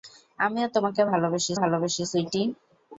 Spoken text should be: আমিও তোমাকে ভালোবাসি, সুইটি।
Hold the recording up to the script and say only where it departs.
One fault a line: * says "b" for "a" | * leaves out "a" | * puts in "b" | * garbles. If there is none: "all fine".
* puts in "ভালোবাসি"